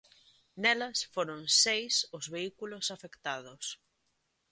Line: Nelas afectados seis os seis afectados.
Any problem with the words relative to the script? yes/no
yes